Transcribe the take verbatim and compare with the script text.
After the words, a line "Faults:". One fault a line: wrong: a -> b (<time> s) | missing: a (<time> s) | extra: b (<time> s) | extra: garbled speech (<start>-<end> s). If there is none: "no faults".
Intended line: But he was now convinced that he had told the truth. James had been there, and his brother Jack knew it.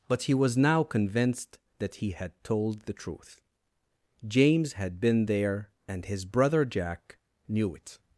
But he was now convinced that he had told the truth. James had been there, and his brother Jack knew it.
Faults:
no faults